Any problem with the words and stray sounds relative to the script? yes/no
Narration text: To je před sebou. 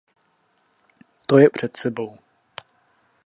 no